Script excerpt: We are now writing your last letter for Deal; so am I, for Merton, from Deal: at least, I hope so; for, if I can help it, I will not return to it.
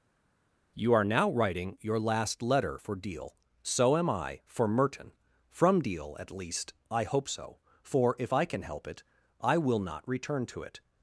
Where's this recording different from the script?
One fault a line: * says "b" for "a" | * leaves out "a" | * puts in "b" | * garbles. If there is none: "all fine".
* says "You" for "We"